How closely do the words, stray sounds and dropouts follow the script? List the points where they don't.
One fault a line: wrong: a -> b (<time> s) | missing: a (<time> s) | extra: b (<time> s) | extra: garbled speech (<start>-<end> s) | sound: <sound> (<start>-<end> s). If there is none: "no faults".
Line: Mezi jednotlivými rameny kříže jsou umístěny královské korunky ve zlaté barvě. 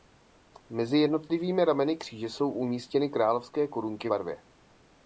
missing: ve zlaté (4.1 s)